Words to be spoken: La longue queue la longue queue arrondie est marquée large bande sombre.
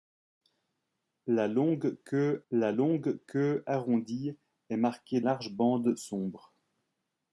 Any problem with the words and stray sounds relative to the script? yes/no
no